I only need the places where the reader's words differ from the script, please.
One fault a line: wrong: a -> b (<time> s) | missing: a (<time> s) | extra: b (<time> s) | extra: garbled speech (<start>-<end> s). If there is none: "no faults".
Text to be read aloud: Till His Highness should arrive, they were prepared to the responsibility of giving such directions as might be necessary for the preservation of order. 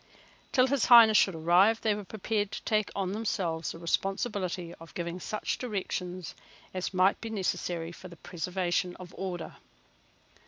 extra: take on themselves (2.6 s)